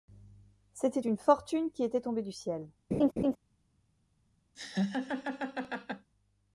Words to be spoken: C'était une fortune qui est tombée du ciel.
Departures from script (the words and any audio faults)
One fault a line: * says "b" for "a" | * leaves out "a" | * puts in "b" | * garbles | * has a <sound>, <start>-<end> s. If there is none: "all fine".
* says "était" for "est"
* has a laugh, 2.9-3.4 s
* has a laugh, 4.5-6.1 s